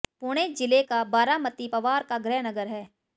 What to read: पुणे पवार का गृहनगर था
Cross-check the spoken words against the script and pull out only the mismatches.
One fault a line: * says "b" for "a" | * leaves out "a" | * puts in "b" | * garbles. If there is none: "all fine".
* puts in "जिले का बारामती"
* says "है" for "था"